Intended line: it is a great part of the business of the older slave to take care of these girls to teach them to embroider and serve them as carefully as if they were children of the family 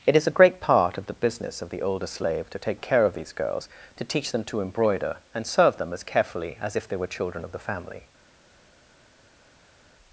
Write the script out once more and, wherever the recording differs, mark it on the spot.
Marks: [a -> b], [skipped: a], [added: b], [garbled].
it is a great part of the business of the older slave to take care of these girls to teach them to embroider and serve them as carefully as if they were children of the family